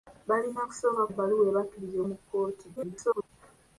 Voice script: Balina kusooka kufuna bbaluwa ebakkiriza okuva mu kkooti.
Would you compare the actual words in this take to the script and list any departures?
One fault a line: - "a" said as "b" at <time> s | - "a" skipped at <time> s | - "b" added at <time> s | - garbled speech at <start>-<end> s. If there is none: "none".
- "kufuna" skipped at 1.0 s
- "okuva" skipped at 2.0 s
- garbled speech at 2.8-3.3 s